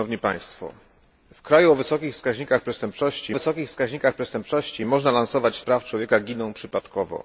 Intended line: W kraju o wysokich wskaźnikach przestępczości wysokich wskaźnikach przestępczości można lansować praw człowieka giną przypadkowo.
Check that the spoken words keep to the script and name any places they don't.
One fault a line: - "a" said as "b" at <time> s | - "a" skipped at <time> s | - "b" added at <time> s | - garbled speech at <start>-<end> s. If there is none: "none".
none